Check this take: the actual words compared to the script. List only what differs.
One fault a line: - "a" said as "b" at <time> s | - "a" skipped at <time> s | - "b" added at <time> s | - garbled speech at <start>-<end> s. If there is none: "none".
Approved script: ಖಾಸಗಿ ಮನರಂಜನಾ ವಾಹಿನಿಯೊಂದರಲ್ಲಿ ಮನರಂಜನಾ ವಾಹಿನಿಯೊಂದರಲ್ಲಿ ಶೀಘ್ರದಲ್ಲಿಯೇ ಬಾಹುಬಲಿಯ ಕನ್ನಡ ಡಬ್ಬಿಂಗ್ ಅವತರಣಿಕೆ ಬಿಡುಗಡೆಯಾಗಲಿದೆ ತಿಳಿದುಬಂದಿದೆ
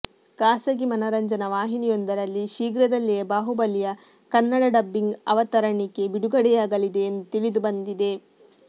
- "ಮನರಂಜನಾ ವಾಹಿನಿಯೊಂದರಲ್ಲಿ" skipped at 2.5 s
- "ಎಂದು" added at 7.1 s